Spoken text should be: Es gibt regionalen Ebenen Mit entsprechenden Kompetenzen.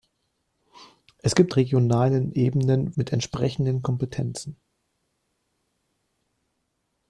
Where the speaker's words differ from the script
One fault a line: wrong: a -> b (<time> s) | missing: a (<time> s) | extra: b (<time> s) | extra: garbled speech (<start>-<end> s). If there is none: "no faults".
no faults